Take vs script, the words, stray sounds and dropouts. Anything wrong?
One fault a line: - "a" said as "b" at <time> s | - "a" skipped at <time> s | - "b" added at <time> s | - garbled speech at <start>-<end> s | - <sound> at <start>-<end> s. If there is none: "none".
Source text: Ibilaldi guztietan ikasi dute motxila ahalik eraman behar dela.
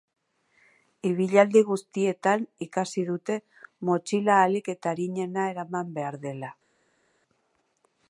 - "eta arinena" added at 4.8 s